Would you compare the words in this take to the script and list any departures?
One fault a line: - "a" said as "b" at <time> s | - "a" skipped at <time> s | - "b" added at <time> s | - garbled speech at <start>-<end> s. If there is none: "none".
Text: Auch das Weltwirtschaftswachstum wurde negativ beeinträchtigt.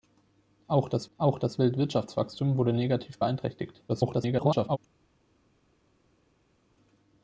- "auch das" added at 1.2 s
- garbled speech at 3.9-4.8 s